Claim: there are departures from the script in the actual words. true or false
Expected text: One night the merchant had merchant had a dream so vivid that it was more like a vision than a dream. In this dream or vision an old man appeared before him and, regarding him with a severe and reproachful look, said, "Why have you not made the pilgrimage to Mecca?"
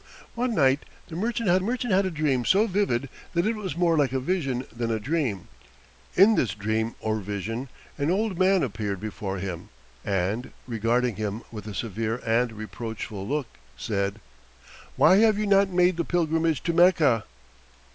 false